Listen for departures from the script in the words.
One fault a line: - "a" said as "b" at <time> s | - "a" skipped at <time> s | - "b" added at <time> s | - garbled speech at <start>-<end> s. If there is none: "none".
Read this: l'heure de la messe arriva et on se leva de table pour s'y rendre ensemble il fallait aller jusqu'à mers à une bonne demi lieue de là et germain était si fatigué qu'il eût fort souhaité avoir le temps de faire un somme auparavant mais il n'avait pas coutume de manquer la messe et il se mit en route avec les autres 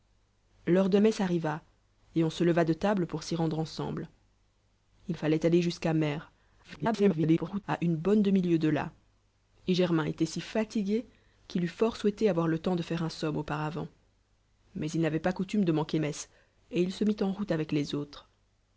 - "la" skipped at 1.0 s
- garbled speech at 6.6-7.6 s
- "la" skipped at 16.0 s